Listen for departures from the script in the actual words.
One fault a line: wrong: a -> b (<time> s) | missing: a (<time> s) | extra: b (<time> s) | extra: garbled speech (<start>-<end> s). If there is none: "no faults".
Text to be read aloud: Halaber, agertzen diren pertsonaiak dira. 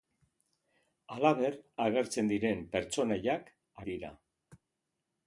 no faults